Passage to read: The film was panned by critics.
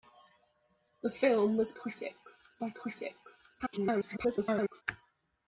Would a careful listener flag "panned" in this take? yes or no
yes